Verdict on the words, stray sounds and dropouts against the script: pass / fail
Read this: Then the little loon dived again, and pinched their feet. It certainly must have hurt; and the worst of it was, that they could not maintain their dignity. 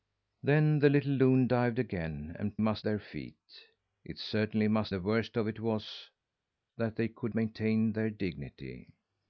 fail